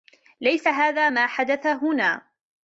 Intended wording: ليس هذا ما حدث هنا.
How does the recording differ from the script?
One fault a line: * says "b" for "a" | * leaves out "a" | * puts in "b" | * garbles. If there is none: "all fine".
all fine